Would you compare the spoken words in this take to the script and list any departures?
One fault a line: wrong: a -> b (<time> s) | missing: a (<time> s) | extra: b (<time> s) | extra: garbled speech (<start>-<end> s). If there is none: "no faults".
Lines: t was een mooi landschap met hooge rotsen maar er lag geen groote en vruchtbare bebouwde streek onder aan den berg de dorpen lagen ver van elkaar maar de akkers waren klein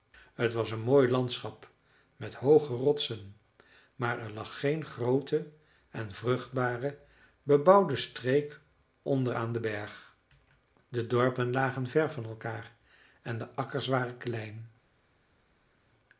wrong: maar -> en (13.2 s)